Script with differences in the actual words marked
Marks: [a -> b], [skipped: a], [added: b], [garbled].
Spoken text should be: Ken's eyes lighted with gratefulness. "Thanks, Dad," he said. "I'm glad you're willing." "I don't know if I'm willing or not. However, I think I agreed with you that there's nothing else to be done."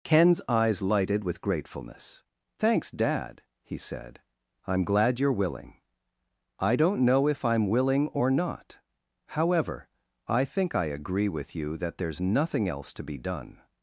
Ken's eyes lighted with gratefulness. "Thanks, Dad," he said. "I'm glad you're willing." "I don't know if I'm willing or not. However, I think I [agreed -> agree] with you that there's nothing else to be done."